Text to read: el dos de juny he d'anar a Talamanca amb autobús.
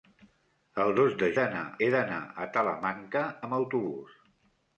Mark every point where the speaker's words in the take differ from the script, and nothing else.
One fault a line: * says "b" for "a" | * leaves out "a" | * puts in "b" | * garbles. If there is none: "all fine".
* says "d'anar" for "juny"